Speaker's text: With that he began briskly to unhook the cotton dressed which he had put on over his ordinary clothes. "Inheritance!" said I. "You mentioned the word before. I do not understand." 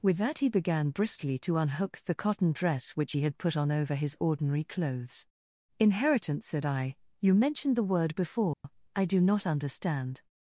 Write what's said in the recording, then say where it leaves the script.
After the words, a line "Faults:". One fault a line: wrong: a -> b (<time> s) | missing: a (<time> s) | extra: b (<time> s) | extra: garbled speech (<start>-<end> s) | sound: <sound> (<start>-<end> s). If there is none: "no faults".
With that he began briskly to unhook the cotton dress which he had put on over his ordinary clothes. "Inheritance!" said I. "You mentioned the word before. I do not understand."
Faults:
wrong: dressed -> dress (2.5 s)
sound: dropout (8.5-8.6 s)